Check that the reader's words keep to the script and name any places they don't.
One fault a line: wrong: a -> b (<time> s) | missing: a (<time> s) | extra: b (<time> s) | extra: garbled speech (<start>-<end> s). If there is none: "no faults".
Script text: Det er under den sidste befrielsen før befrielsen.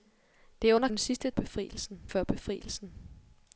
no faults